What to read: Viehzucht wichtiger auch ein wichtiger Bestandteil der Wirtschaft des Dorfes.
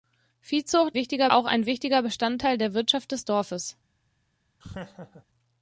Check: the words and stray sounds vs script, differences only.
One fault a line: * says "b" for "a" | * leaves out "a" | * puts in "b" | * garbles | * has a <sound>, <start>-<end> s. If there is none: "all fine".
* has a laugh, 4.6-5.3 s